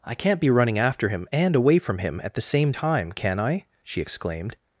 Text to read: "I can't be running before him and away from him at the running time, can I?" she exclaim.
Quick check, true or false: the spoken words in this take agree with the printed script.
false